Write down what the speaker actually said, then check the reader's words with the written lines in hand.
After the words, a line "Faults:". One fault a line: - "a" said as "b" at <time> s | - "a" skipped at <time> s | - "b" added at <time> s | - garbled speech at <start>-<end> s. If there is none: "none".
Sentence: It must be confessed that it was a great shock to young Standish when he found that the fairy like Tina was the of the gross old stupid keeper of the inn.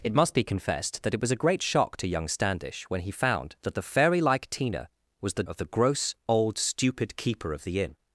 It must be confessed that it was a great shock to young Standish when he found that the fairy like Tina was the of the gross old stupid keeper of the inn.
Faults:
none